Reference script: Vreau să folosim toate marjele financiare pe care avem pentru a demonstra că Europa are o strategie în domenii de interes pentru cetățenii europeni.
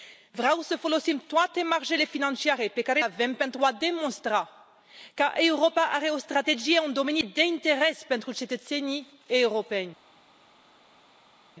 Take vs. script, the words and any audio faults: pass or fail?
pass